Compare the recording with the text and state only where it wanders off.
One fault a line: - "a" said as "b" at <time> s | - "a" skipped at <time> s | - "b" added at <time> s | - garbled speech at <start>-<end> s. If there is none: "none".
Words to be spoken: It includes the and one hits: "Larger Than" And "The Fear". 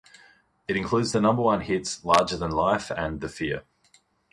- "and" said as "number" at 1.2 s
- "Life" added at 2.5 s